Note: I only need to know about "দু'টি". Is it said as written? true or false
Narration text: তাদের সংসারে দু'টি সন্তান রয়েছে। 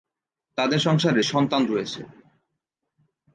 false